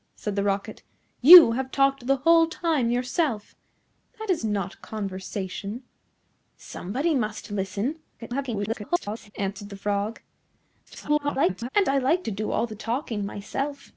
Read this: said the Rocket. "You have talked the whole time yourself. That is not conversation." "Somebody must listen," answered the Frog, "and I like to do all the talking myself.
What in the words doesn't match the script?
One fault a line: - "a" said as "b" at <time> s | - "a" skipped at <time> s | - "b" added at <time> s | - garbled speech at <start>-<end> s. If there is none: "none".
- garbled speech at 8.2-9.3 s
- garbled speech at 10.9-11.7 s